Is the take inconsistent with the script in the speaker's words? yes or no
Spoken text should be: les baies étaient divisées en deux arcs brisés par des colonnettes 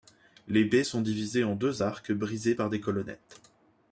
yes